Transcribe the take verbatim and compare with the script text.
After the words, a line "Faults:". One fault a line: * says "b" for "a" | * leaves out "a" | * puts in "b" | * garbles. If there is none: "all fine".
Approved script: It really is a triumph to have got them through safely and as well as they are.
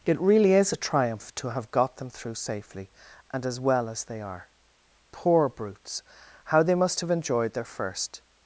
It really is a triumph to have got them through safely and as well as they are. Poor brutes, how they must have enjoyed their first
Faults:
* puts in "Poor brutes how they must have enjoyed their first"